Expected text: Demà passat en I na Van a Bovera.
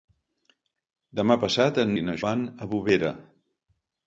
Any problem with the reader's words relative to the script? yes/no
no